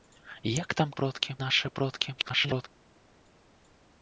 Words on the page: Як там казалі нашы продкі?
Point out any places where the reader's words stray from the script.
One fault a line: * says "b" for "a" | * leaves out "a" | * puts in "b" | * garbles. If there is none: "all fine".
* says "продкі" for "казалі"
* garbles